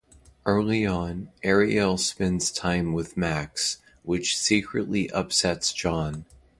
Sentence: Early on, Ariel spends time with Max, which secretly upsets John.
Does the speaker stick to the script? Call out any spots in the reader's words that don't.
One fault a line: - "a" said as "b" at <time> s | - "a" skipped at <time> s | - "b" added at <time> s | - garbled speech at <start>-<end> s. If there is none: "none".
none